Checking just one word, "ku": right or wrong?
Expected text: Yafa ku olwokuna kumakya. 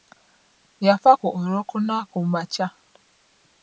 right